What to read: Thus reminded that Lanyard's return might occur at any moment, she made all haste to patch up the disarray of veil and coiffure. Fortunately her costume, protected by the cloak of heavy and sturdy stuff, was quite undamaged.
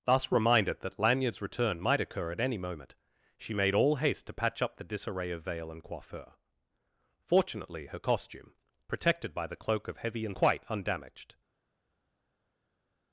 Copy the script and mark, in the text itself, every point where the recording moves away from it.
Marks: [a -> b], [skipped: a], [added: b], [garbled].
Thus reminded that Lanyard's return might occur at any moment, she made all haste to patch up the disarray of veil and coiffure. Fortunately her costume, protected by the cloak of heavy and [skipped: sturdy stuff, was] quite undamaged.